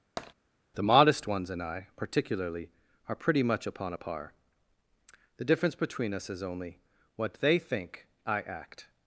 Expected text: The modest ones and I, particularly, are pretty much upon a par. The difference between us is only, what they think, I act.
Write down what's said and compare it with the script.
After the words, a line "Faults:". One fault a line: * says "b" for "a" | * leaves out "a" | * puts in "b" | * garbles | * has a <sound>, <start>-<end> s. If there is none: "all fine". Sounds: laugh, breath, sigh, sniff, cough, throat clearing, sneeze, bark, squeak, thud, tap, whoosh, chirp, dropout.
The modest ones and I, particularly, are pretty much upon a par. The difference between us is only, what they think, I act.
Faults:
* has a tap, 0.2-0.3 s